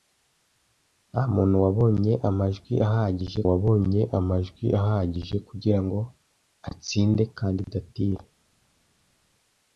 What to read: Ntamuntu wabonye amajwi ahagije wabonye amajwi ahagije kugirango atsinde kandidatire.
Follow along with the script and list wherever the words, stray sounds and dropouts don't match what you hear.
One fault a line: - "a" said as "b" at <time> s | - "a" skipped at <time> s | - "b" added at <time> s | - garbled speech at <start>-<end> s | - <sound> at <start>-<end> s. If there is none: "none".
none